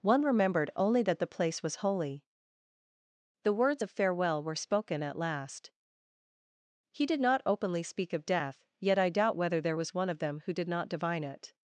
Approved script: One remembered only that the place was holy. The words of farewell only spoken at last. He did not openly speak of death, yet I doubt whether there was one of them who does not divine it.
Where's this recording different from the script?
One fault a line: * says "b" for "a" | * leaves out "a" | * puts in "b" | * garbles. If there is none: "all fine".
* says "were" for "only"
* says "did" for "does"